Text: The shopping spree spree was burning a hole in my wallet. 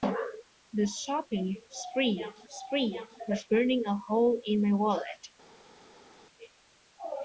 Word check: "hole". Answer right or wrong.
right